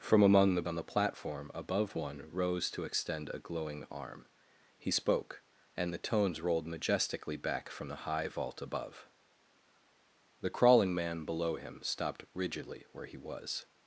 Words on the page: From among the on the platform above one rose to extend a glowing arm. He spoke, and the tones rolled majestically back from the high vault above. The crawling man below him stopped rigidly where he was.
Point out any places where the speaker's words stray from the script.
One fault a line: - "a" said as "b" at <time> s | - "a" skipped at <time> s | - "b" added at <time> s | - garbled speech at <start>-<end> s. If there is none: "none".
none